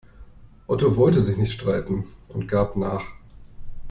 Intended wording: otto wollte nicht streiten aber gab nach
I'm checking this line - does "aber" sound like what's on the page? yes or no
no